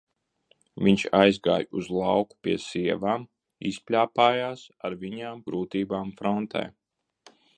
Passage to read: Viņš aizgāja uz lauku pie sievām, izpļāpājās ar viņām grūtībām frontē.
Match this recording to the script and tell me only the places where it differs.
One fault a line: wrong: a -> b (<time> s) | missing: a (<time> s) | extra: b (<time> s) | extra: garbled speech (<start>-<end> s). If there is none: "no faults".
no faults